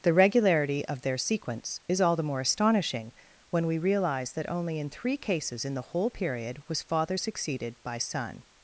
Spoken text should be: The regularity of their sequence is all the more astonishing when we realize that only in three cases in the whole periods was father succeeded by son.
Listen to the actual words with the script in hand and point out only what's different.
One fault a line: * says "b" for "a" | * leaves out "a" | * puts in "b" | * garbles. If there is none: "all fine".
* says "period" for "periods"